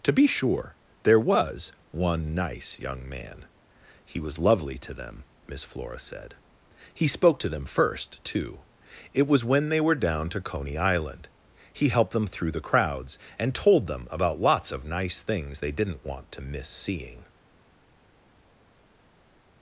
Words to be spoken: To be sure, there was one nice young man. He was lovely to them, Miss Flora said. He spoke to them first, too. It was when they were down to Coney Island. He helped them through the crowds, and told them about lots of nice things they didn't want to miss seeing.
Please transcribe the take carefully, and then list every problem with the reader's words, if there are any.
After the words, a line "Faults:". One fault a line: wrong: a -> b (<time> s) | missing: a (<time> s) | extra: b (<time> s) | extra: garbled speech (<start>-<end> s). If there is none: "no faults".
To be sure, there was one nice young man. He was lovely to them, Miss Flora said. He spoke to them first, too. It was when they were down to Coney Island. He helped them through the crowds, and told them about lots of nice things they didn't want to miss seeing.
Faults:
no faults